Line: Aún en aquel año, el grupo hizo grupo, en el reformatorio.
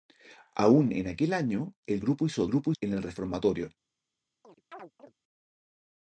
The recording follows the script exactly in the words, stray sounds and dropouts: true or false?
false